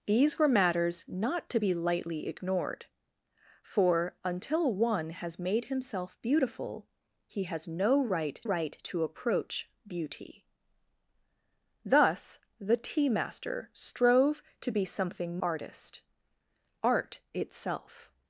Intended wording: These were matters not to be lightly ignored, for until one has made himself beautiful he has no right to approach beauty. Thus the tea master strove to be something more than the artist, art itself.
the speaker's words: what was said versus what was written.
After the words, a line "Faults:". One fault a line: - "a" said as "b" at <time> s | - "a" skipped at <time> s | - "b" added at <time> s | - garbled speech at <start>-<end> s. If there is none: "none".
These were matters not to be lightly ignored, for until one has made himself beautiful he has no right right to approach beauty. Thus the tea master strove to be something artist, art itself.
Faults:
- "right" added at 8.4 s
- "more than the" skipped at 15.4 s